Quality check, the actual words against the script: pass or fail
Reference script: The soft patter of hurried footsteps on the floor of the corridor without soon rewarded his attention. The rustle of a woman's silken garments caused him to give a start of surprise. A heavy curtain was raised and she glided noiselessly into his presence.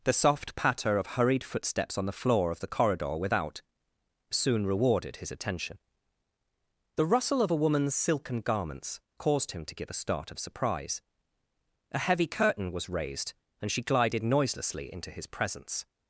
pass